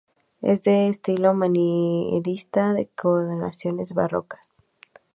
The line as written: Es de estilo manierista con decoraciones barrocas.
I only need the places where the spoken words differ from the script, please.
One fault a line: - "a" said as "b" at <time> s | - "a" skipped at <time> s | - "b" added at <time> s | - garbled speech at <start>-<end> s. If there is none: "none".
none